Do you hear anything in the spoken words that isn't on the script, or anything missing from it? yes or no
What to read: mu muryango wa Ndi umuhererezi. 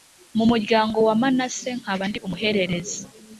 yes